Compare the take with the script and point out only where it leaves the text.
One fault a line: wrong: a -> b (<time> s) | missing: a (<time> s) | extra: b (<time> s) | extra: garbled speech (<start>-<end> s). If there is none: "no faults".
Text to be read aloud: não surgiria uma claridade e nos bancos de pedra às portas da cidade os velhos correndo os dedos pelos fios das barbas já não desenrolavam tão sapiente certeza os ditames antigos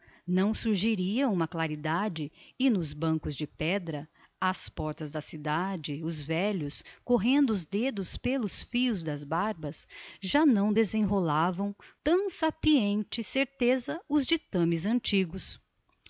no faults